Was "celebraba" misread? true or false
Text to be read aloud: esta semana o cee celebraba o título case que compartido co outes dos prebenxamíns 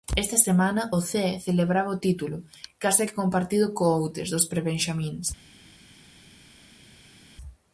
false